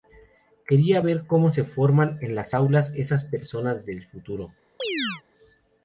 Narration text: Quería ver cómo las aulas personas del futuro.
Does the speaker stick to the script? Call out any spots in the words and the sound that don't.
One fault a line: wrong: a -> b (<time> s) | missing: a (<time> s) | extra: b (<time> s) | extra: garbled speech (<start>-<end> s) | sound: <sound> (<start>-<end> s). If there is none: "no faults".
extra: se forman en (1.5 s)
extra: esas (3.0 s)
sound: chirp (4.8-5.2 s)